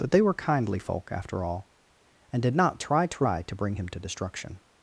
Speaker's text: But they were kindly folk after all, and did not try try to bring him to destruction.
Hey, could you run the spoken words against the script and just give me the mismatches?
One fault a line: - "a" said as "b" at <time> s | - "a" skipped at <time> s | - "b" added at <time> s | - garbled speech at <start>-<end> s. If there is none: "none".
none